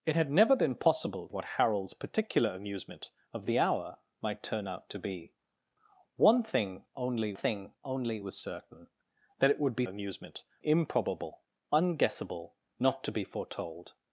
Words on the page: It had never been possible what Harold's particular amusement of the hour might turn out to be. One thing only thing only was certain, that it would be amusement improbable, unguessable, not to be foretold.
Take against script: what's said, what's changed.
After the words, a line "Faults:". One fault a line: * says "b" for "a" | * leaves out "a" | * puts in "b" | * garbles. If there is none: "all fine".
It had never been possible what Harold's particular amusement of the hour might turn out to be. One thing only thing only was certain, that it would be amusement improbable, unguessable, not to be foretold.
Faults:
all fine